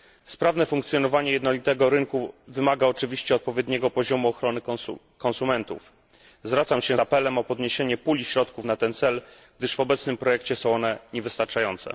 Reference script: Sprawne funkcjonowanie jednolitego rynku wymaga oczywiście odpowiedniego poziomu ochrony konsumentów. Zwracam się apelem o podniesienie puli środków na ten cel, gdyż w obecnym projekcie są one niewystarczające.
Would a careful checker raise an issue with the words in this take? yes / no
no